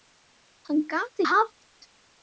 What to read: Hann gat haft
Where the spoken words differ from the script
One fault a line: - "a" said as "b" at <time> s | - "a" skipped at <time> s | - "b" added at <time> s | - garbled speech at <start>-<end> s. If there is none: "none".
none